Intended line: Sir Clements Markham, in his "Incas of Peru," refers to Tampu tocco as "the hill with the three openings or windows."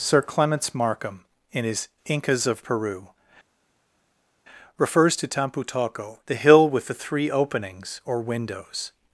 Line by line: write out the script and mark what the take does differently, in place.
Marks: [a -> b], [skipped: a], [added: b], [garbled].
Sir Clements Markham, in his "Incas of Peru," refers to Tampu tocco [skipped: as] "the hill with the three openings or windows."